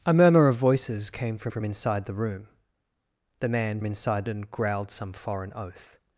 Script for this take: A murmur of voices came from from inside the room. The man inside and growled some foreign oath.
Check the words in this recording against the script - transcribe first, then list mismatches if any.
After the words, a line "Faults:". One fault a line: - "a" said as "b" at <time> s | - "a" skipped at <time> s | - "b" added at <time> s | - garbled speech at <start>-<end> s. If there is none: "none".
A murmur of voices came from from inside the room. The man inside and growled some foreign oath.
Faults:
none